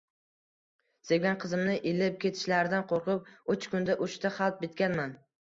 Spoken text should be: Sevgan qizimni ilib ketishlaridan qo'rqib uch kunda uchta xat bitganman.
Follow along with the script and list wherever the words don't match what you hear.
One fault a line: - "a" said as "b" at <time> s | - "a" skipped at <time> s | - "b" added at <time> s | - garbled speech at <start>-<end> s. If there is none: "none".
none